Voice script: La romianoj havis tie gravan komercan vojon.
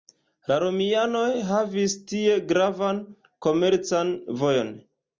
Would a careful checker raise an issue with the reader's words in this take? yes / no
no